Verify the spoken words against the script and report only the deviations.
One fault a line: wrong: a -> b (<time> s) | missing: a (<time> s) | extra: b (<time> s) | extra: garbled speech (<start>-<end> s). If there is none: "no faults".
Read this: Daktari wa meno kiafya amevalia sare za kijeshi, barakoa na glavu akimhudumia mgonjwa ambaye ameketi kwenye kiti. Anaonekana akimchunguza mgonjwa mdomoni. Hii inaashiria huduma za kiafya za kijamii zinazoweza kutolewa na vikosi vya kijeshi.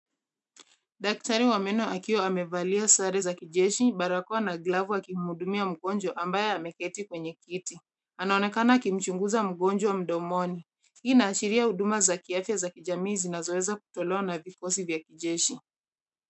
wrong: kiafya -> akiwa (1.9 s)